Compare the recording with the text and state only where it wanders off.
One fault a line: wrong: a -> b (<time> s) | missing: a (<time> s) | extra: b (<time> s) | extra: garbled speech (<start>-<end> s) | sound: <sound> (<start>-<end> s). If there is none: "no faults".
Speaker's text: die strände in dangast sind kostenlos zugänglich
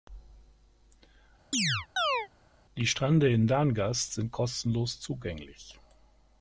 sound: chirp (1.5-2.3 s)